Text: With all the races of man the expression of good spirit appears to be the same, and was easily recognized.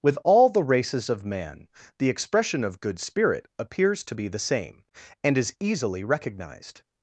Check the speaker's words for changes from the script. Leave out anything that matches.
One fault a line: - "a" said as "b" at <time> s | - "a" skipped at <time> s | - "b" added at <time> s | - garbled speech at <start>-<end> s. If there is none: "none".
- "was" said as "is" at 5.4 s